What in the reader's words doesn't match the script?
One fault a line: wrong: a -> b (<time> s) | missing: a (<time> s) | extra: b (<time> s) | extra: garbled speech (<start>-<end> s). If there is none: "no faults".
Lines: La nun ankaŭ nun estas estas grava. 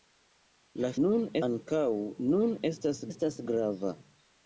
no faults